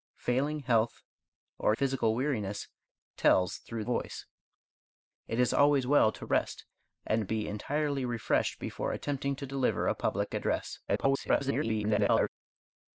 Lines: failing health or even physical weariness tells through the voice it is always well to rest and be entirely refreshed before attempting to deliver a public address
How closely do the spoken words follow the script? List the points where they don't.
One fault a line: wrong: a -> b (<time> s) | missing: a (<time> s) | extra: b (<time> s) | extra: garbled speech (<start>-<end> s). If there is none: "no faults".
missing: even (1.8 s)
missing: the (3.8 s)
extra: garbled speech (10.9-12.3 s)